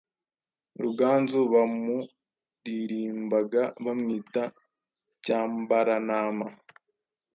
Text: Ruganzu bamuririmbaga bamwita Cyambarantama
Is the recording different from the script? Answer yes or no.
no